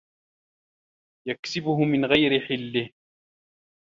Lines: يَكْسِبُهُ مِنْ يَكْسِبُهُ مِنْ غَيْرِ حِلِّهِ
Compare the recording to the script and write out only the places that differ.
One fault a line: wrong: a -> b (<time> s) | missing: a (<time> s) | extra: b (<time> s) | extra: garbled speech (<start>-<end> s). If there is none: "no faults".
missing: يَكْسِبُهُ مِنْ (2.0 s)